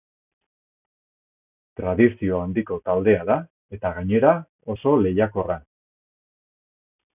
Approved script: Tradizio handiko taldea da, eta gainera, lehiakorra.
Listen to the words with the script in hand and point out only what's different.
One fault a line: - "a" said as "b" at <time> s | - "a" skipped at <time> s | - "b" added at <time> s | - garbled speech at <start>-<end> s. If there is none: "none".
- "oso" added at 4.8 s